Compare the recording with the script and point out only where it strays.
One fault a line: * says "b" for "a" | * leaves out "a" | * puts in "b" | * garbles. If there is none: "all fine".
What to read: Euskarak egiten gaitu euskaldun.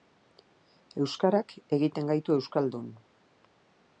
all fine